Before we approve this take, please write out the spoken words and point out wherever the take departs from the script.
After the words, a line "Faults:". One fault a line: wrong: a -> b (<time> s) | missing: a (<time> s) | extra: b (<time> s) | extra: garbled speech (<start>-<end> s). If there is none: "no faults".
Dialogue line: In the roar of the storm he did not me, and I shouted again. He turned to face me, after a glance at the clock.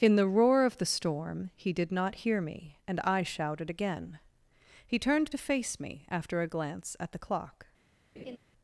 In the roar of the storm he did not hear me, and I shouted again. He turned to face me, after a glance at the clock.
Faults:
extra: hear (2.2 s)